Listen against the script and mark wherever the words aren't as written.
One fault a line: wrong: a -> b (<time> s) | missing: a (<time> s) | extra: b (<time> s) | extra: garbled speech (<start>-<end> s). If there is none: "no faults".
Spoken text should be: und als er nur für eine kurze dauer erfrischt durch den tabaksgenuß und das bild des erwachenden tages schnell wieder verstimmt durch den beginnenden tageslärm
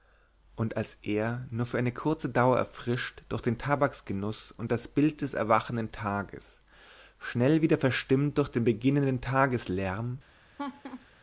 no faults